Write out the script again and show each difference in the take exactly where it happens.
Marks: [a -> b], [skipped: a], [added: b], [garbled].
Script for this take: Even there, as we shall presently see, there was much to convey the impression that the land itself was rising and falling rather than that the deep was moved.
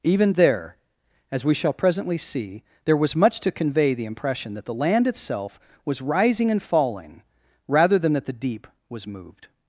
Even there, as we shall presently see, there was much to convey the impression that the land itself was rising and falling rather than that the deep was moved.